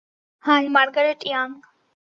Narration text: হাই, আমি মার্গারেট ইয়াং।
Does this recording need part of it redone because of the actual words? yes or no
yes